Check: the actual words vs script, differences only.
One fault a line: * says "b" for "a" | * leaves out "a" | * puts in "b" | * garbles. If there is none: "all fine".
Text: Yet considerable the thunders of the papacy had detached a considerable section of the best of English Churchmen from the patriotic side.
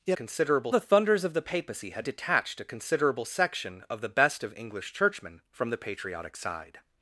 all fine